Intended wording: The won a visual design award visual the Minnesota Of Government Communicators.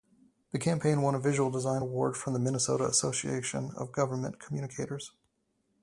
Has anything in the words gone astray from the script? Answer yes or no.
yes